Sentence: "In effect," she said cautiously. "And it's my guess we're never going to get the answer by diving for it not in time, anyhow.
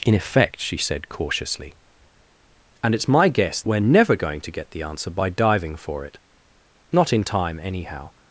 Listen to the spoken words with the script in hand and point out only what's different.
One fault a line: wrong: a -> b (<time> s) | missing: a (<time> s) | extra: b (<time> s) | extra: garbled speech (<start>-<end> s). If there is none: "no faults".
no faults